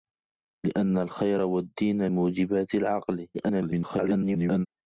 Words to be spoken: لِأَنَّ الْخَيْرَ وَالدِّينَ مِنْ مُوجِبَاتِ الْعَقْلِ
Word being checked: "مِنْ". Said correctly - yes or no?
no